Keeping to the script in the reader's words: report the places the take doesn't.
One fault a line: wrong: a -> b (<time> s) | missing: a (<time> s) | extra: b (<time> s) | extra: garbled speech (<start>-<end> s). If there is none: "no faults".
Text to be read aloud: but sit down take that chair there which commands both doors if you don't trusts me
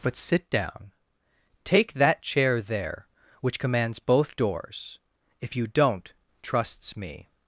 no faults